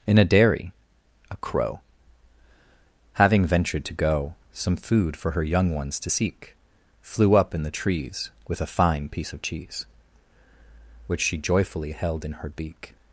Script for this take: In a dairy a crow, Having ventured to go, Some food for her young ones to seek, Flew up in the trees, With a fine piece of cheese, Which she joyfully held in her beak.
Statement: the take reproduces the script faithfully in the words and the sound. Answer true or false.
true